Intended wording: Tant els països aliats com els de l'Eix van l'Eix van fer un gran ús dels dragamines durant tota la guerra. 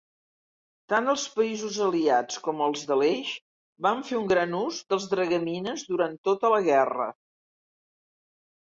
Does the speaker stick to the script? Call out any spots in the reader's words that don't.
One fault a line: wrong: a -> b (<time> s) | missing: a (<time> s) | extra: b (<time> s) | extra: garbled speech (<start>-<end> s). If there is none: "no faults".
missing: l'Eix van (4.0 s)